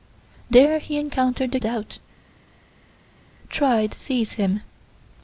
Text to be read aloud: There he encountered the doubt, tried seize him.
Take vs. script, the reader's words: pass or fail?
pass